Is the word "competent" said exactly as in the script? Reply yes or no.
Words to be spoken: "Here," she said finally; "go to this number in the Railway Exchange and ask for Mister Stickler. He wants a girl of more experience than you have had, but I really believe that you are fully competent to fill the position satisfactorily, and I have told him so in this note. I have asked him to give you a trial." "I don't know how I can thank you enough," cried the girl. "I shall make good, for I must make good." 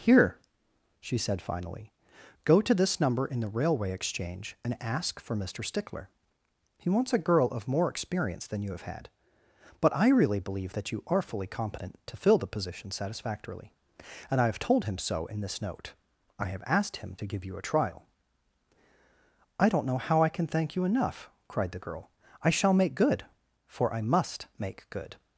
yes